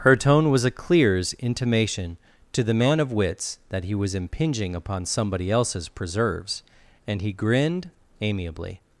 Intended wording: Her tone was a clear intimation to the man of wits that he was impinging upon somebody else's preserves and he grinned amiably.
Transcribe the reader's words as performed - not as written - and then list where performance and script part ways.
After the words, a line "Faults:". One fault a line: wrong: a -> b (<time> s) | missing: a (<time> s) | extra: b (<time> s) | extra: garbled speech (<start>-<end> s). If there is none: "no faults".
Her tone was a clears intimation to the man of wits that he was impinging upon somebody else's preserves and he grinned amiably.
Faults:
wrong: clear -> clears (0.7 s)